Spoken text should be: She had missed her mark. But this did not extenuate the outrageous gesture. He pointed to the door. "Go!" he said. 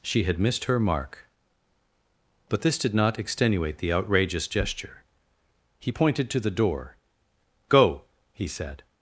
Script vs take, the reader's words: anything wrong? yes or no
no